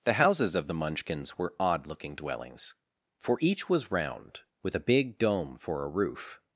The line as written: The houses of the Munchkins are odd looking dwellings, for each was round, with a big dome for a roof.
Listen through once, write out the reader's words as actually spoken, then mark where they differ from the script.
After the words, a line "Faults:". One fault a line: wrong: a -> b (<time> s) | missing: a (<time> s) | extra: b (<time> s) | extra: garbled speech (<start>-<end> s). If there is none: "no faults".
The houses of the Munchkins were odd looking dwellings, for each was round, with a big dome for a roof.
Faults:
wrong: are -> were (1.4 s)